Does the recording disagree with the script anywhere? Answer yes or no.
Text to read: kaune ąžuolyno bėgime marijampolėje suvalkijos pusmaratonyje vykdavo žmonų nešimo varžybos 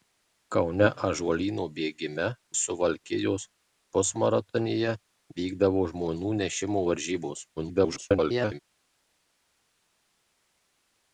yes